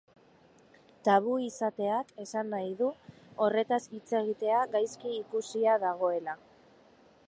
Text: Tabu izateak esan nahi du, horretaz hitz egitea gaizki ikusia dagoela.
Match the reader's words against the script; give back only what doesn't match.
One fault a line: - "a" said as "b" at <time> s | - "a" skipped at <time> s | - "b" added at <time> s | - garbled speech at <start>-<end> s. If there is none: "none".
none